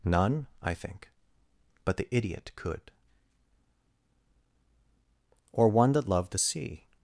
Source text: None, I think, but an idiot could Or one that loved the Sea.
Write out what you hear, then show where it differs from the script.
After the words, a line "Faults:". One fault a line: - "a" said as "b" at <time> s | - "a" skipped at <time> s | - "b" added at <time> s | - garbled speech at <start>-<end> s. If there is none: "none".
None, I think, but the idiot could Or one that loved the Sea.
Faults:
- "an" said as "the" at 2.0 s